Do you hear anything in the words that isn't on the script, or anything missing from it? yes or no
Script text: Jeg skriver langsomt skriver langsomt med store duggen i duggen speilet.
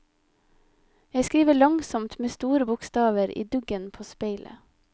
yes